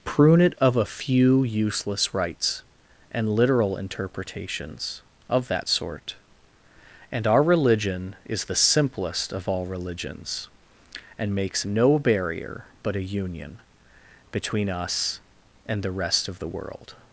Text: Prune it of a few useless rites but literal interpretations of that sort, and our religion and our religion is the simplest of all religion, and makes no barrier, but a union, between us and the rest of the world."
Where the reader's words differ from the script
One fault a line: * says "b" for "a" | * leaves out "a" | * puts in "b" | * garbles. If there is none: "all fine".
* says "and" for "but"
* leaves out "and our religion"
* says "religions" for "religion"